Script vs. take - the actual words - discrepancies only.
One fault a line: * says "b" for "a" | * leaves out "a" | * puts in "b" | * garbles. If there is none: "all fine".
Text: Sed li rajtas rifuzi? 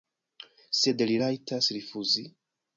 all fine